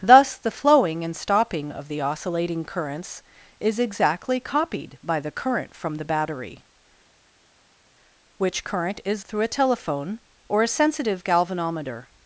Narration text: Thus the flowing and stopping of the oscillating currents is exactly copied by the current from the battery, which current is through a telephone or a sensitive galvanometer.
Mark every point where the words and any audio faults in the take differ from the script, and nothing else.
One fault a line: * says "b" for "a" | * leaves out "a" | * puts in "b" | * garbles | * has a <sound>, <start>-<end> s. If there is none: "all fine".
all fine